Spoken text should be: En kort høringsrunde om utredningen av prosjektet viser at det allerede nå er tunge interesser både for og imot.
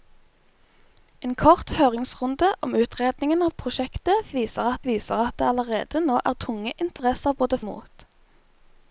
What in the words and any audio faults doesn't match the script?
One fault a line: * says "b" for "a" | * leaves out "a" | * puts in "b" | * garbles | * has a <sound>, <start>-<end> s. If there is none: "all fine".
* puts in "viser at"
* has a dropout, 7.0-7.0 s
* leaves out "for og"